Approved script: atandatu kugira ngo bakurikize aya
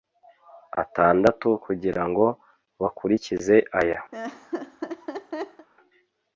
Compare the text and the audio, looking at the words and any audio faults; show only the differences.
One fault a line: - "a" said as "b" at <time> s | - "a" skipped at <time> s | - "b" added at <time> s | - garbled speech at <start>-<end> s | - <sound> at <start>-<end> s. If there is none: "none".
- laugh at 4.1-5.7 s